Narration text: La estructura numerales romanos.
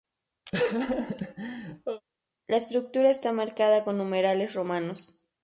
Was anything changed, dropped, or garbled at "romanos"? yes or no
no